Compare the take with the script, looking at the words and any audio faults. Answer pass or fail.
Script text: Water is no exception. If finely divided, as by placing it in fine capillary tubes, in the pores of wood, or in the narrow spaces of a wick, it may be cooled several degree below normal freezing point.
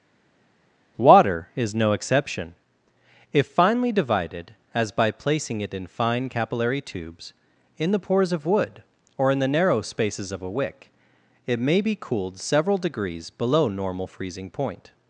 fail